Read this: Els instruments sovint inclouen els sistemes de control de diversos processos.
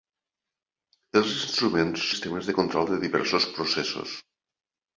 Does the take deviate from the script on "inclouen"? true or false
true